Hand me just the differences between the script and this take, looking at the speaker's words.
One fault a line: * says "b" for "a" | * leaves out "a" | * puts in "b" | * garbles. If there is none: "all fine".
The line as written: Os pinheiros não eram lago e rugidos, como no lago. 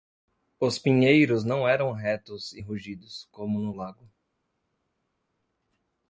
* says "retos" for "lago"